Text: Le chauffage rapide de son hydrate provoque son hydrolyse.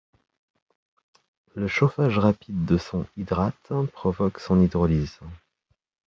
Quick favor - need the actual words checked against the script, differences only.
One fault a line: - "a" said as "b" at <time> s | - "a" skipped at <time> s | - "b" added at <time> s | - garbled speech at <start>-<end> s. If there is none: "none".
none